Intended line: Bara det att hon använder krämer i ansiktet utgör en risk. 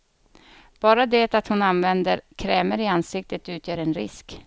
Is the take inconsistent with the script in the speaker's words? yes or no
no